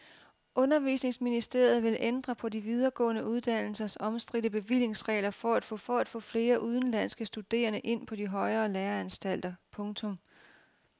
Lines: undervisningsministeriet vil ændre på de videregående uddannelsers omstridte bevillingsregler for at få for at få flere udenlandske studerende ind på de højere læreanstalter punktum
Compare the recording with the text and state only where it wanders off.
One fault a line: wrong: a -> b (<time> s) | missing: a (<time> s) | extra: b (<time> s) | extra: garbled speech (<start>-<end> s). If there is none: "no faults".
no faults